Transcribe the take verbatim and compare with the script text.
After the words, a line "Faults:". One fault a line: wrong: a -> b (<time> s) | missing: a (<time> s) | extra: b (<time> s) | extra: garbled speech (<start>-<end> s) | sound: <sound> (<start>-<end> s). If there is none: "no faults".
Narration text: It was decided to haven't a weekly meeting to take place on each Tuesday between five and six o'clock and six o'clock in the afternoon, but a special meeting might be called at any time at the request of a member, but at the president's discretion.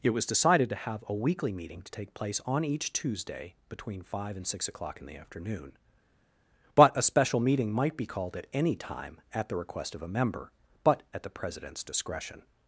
It was decided to have a weekly meeting to take place on each Tuesday between five and six o'clock in the afternoon, but a special meeting might be called at any time at the request of a member, but at the president's discretion.
Faults:
wrong: haven't -> have (0.8 s)
missing: and six o'clock (5.0 s)